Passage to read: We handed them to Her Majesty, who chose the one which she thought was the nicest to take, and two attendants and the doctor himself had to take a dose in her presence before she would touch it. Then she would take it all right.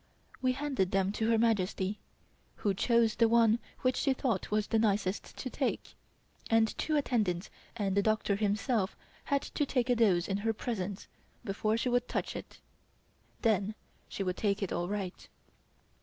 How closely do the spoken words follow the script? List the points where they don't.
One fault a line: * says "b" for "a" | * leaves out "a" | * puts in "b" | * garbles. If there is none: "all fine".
all fine